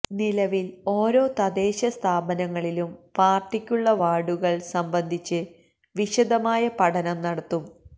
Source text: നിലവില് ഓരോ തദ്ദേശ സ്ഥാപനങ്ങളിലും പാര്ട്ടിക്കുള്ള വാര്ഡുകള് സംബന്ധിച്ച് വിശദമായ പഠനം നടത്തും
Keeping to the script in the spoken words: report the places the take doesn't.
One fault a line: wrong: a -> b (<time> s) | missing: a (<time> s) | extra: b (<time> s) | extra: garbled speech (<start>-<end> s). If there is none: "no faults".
no faults